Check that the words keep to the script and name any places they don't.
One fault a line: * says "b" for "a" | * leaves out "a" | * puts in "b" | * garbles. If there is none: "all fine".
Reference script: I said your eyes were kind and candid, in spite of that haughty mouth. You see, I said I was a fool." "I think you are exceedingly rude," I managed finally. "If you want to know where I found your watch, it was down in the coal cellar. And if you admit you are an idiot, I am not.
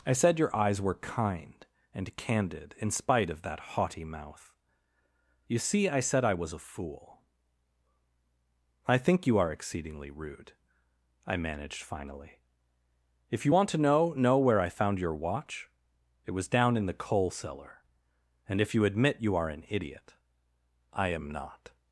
* puts in "know"